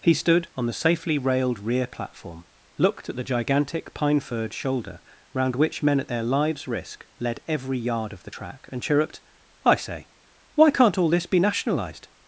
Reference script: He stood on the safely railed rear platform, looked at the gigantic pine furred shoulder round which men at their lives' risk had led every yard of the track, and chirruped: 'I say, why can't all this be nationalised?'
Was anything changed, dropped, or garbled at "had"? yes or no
yes